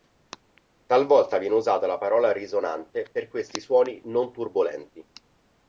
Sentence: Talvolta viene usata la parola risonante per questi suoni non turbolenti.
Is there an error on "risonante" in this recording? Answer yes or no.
no